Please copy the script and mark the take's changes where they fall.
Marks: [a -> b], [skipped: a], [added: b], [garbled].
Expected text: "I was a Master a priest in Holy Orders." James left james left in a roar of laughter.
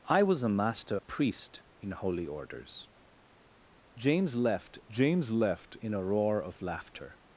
"I was a Master a priest in Holy Orders." James left james left in a roar of laughter.